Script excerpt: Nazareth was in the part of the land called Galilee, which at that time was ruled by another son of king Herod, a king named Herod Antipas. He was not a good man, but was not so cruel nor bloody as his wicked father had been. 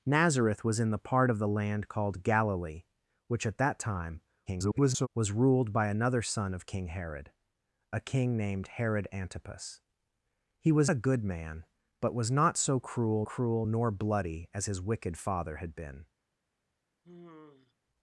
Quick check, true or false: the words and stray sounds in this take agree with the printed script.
false